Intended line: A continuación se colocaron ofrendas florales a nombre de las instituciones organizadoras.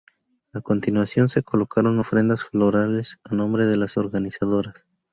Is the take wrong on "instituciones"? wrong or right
wrong